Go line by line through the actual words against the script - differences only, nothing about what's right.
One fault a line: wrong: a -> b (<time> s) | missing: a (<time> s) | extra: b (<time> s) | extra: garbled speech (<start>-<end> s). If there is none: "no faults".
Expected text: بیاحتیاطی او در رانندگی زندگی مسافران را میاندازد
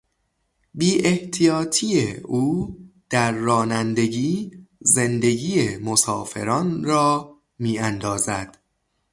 no faults